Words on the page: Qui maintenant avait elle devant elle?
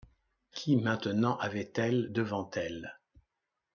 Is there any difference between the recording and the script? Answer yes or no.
no